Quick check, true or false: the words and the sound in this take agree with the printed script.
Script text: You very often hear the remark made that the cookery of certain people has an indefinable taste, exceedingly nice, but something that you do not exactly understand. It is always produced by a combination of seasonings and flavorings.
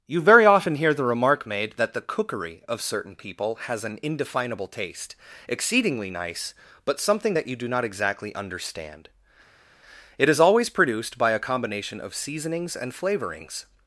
true